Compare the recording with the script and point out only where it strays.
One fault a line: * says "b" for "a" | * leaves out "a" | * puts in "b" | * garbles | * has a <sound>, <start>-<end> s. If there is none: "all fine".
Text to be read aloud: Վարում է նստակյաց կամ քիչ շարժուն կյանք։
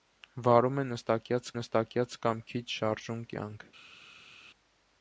* puts in "նստակյաց"